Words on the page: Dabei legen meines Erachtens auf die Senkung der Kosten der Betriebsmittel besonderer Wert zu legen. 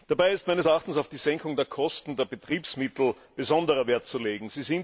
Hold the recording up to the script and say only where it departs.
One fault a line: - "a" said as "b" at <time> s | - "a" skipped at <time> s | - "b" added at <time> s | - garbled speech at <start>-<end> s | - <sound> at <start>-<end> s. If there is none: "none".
- "legen" said as "ist" at 0.3 s